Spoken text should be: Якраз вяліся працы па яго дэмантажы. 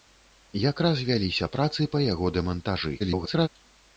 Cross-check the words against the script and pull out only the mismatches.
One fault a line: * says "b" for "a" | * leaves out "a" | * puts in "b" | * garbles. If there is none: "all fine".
* garbles